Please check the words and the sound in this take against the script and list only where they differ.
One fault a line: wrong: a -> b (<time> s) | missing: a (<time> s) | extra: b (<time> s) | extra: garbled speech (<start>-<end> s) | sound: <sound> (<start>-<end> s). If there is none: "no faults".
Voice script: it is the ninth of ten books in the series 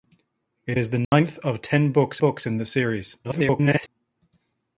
sound: dropout (1.0-1.1 s)
extra: books (2.2 s)
extra: garbled speech (3.2-3.9 s)